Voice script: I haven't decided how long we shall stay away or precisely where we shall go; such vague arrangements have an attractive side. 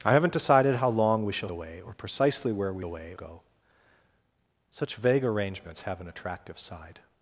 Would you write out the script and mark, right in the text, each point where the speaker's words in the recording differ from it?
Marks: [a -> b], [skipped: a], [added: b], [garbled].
I haven't decided how long we shall [skipped: stay] away or precisely where we [shall -> away] go; such vague arrangements have an attractive side.